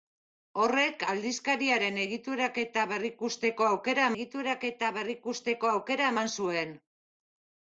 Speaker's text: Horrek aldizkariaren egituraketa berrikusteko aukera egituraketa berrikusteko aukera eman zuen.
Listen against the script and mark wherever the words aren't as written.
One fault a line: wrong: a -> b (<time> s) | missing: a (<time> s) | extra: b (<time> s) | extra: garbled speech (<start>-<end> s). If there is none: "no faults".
no faults